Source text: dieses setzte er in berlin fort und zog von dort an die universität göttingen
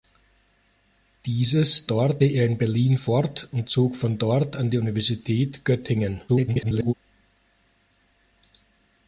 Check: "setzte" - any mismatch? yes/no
yes